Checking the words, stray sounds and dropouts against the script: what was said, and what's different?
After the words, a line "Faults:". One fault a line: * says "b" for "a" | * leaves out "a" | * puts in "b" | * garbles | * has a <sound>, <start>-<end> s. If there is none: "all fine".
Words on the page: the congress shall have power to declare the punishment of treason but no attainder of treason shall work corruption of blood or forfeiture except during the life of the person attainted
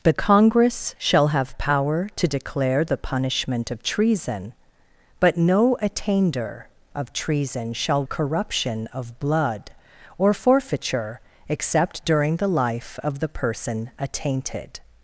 the congress shall have power to declare the punishment of treason but no attainder of treason shall corruption of blood or forfeiture except during the life of the person attainted
Faults:
* leaves out "work"